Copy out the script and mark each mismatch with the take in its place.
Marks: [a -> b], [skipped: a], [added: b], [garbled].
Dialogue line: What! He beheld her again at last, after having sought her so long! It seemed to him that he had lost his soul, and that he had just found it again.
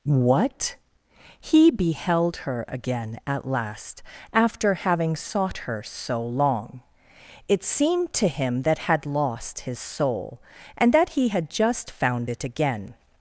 What! He beheld her again at last, after having sought her so long! It seemed to him that [skipped: he] had lost his soul, and that he had just found it again.